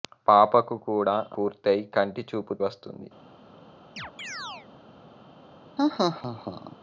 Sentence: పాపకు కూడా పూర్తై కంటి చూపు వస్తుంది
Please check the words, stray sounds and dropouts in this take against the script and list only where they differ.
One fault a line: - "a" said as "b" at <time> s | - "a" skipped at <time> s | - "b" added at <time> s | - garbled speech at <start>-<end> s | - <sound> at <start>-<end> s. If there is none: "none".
- chirp at 4.0-4.7 s
- laugh at 5.8-6.8 s